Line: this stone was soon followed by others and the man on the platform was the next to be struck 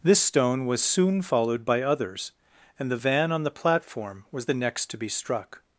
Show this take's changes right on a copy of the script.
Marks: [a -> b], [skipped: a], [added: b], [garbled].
this stone was soon followed by others and the [man -> van] on the platform was the next to be struck